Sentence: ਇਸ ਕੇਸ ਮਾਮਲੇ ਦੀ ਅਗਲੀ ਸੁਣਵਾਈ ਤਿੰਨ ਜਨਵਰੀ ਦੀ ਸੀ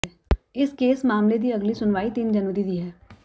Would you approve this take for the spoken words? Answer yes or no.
no